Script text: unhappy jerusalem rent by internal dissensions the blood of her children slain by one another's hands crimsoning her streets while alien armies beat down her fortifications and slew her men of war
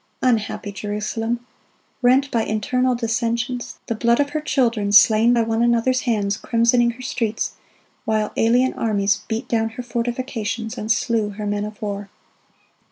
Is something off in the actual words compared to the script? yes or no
no